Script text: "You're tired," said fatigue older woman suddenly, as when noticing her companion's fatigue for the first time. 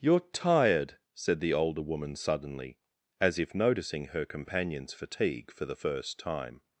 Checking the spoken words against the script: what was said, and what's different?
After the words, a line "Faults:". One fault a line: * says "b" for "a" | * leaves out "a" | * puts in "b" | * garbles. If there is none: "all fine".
"You're tired," said the older woman suddenly, as if noticing her companion's fatigue for the first time.
Faults:
* says "the" for "fatigue"
* says "if" for "when"